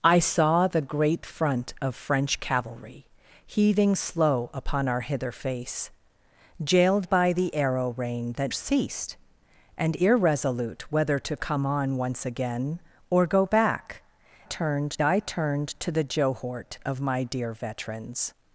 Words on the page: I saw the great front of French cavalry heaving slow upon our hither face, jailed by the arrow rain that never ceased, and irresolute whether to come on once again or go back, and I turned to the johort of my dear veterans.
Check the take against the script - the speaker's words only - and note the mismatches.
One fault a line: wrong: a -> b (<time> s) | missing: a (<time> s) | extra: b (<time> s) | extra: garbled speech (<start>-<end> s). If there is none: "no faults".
missing: never (8.5 s)
wrong: and -> turned (14.4 s)